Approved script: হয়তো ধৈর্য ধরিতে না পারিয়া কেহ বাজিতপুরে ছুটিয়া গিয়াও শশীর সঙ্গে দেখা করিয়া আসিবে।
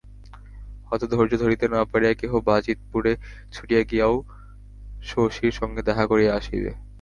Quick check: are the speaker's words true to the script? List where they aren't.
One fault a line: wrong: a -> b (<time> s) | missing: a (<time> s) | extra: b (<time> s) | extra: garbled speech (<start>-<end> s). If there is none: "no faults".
no faults